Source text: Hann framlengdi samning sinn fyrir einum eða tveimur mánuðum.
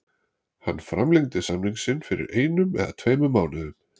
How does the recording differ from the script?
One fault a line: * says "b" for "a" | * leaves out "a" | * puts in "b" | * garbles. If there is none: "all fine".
all fine